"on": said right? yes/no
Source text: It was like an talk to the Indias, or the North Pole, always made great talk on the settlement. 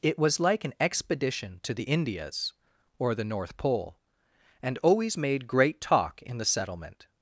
no